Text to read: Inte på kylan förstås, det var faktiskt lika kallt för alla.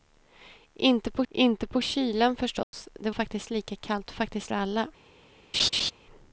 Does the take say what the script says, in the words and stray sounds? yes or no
no